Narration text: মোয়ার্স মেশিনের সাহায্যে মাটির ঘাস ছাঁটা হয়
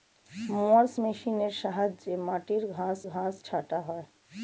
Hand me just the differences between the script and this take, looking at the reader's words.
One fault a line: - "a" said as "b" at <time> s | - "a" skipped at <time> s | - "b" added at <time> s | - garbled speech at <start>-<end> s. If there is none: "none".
- "ঘাস" added at 3.1 s